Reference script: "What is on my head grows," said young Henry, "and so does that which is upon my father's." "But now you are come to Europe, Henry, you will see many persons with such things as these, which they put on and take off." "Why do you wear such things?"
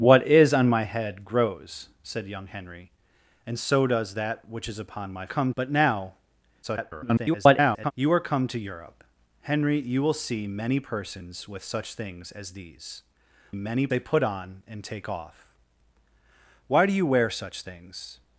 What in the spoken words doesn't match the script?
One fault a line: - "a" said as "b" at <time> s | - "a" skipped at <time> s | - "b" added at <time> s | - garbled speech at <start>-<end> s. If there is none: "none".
- "father's" said as "come" at 5.3 s
- garbled speech at 6.6-7.9 s
- "which" said as "many" at 13.5 s